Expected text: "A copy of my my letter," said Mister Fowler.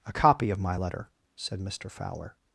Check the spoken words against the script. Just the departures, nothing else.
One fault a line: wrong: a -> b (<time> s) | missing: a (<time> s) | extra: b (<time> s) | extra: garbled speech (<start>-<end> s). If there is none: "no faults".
missing: my (0.8 s)